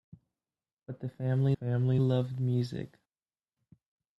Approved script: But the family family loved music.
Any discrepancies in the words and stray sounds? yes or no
no